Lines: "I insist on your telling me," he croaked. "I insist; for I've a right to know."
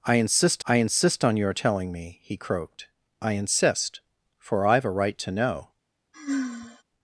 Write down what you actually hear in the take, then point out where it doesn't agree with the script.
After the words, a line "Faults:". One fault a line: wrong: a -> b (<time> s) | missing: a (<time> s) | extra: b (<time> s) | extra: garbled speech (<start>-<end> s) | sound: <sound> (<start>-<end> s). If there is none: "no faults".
"I insist I insist on your telling me," he croaked. "I insist; for I've a right to know."
Faults:
extra: I insist (0.6 s)
sound: sigh (6.1-6.8 s)